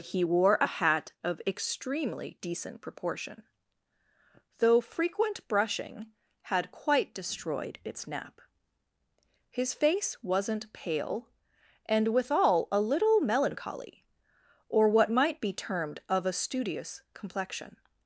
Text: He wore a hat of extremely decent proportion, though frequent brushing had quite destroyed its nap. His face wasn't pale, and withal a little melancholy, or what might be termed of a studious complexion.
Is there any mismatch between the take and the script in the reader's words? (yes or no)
no